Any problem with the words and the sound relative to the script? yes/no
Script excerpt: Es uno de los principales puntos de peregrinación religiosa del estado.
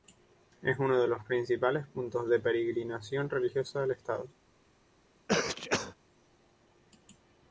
yes